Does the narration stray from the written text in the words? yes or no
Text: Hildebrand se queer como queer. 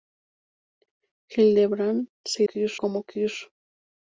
no